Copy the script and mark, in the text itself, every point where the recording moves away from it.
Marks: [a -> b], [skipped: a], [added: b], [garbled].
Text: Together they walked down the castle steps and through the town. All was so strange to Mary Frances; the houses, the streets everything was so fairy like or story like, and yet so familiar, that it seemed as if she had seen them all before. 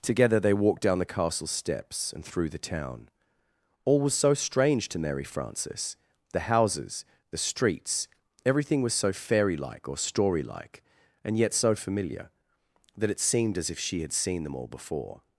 Together they walked down the castle steps and through the town. All was so strange to Mary Frances; the houses, the streets everything was so fairy like or story like, and yet so familiar, that it seemed as if she had seen them all before.